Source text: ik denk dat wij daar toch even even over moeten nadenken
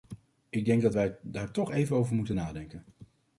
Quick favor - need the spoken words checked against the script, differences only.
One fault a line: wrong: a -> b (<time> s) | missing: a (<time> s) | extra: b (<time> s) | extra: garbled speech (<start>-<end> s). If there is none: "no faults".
missing: even (2.0 s)